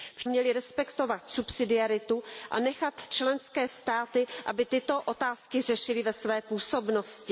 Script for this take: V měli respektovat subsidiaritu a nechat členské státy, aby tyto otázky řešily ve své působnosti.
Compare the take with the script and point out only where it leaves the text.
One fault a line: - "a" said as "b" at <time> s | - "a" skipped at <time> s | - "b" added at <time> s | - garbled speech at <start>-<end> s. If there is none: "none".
none